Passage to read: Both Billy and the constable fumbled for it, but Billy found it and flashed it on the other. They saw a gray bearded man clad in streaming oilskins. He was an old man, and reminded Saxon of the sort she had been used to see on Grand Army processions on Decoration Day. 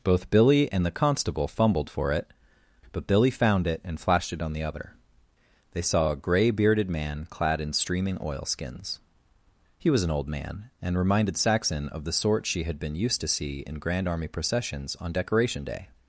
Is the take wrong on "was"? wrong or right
right